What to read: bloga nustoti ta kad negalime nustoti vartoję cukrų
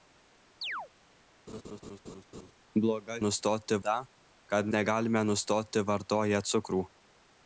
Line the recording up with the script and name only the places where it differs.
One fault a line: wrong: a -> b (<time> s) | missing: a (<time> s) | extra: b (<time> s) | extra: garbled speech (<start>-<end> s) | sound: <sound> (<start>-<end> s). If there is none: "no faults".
sound: chirp (0.6-0.9 s)
sound: laugh (1.5-2.5 s)